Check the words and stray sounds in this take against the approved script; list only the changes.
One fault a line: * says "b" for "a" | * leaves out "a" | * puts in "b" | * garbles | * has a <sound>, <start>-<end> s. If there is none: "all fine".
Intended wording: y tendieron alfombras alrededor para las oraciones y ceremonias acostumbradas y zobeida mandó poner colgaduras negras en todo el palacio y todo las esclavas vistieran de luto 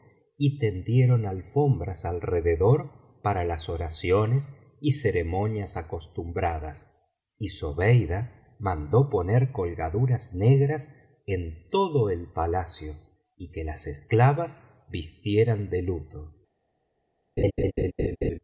* says "que" for "todo"
* has a laugh, 17.4-18.4 s